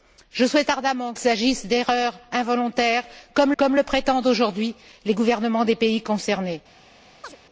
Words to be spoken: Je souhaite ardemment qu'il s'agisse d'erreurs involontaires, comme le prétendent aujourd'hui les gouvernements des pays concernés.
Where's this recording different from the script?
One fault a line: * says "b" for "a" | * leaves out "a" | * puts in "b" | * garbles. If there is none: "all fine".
* leaves out "qu'il"
* puts in "comme"